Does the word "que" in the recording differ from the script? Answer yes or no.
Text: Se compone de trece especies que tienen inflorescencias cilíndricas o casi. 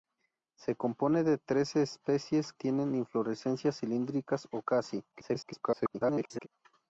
yes